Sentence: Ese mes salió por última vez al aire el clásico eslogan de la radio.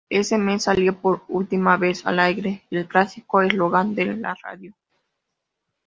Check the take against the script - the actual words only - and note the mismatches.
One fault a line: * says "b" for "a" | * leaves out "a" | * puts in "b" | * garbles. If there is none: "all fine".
all fine